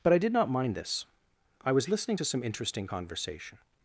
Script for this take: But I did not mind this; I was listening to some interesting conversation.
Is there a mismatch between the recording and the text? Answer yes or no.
no